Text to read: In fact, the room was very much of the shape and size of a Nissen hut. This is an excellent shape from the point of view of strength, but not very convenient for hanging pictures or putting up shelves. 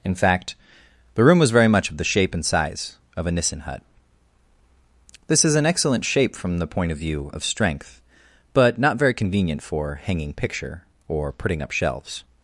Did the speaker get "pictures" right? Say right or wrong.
wrong